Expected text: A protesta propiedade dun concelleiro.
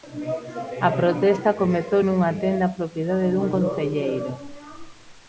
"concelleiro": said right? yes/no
yes